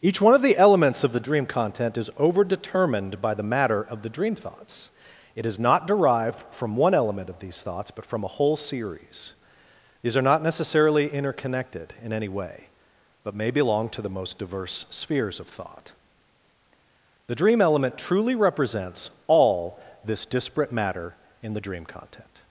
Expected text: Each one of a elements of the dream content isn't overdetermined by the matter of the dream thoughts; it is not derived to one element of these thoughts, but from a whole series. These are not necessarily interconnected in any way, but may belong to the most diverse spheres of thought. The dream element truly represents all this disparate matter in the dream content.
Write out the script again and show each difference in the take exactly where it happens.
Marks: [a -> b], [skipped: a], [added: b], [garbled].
Each one of [a -> the] elements of the dream content [isn't -> is] overdetermined by the matter of the dream thoughts; it is not derived [to -> from] one element of these thoughts, but from a whole series. These are not necessarily interconnected in any way, but may belong to the most diverse spheres of thought. The dream element truly represents all this disparate matter in the dream content.